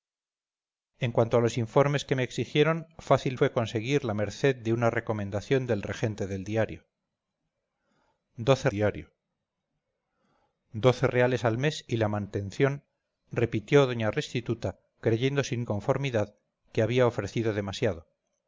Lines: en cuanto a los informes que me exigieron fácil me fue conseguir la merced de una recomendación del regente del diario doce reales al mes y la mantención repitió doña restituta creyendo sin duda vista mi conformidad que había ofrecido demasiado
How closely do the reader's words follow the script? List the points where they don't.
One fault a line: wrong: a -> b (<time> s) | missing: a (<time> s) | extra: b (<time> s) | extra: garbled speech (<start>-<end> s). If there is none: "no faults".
missing: me (3.4 s)
extra: diario doce (8.7 s)
missing: duda vista mi (15.6 s)